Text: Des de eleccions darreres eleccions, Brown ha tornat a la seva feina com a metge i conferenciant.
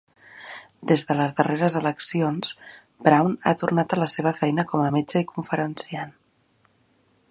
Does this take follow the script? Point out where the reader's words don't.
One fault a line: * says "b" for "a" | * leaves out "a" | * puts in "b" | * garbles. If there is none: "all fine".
* says "les" for "eleccions"